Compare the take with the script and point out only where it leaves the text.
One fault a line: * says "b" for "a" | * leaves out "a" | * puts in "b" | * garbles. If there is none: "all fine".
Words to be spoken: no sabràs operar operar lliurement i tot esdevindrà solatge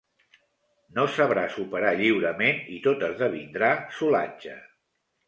* leaves out "operar"